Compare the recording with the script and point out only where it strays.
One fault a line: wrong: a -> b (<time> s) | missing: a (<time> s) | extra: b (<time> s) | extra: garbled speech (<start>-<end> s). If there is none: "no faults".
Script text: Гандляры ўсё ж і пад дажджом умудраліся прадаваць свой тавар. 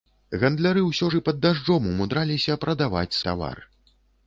missing: свой (3.2 s)